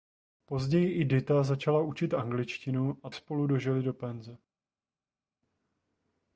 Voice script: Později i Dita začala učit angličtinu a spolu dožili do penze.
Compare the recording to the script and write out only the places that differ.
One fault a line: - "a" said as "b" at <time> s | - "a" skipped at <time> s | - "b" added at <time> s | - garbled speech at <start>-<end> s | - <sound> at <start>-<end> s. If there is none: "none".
none